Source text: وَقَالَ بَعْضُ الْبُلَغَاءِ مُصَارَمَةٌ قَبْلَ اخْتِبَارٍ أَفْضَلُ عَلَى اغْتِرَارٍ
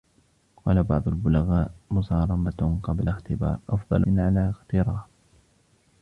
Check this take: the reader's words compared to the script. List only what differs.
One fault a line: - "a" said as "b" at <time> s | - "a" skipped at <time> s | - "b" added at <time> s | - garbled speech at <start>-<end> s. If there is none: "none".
none